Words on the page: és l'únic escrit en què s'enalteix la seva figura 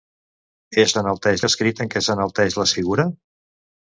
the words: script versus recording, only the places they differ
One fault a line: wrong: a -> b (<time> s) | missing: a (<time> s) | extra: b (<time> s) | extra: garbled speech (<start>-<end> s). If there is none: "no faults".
wrong: l'únic -> s'enalteix (1.0 s)
missing: seva (2.7 s)